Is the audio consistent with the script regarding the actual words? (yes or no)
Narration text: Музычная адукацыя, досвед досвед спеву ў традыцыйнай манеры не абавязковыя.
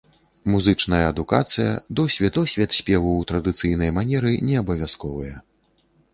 yes